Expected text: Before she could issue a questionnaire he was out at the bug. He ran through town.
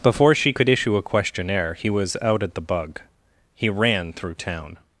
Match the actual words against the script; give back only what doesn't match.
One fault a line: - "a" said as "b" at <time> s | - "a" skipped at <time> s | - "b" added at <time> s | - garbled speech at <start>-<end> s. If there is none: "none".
none